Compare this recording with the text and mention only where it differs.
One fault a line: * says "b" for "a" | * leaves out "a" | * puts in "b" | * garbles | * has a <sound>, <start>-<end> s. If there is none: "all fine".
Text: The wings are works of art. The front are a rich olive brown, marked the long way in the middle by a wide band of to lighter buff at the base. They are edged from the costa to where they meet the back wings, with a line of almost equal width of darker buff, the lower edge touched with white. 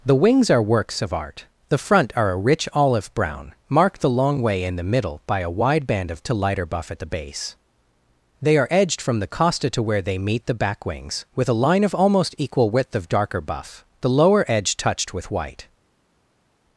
all fine